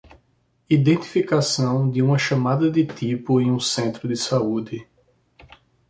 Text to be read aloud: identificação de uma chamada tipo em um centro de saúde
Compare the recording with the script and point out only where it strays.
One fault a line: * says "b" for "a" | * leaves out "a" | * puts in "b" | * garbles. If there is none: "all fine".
* puts in "de"